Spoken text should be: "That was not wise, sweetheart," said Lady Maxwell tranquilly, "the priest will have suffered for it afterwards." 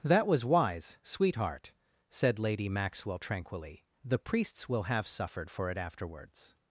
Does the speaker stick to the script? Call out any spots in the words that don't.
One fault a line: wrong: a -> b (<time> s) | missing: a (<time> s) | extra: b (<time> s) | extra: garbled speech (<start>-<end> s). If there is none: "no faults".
missing: not (0.4 s)
wrong: priest -> priests (4.2 s)